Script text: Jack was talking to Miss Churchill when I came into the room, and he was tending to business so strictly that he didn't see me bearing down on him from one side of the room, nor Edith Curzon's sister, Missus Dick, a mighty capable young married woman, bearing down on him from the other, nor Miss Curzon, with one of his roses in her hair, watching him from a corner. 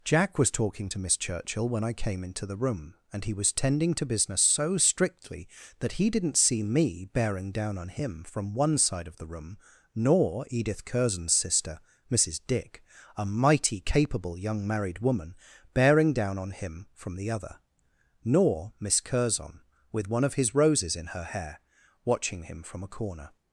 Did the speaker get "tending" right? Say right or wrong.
right